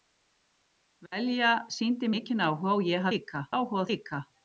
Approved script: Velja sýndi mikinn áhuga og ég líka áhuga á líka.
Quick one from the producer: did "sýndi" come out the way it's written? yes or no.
yes